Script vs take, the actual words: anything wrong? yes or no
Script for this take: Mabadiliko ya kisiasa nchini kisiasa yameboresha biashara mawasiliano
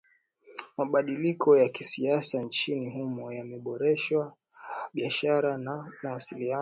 yes